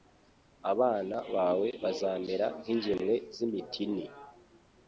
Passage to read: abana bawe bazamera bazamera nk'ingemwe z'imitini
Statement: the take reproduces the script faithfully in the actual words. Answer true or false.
false